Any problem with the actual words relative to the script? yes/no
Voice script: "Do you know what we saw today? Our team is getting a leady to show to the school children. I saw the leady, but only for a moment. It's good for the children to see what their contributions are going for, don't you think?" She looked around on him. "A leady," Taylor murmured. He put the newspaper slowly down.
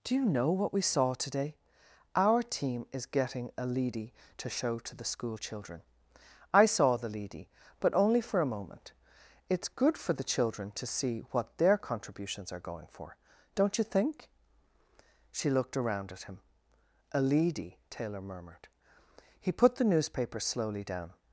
yes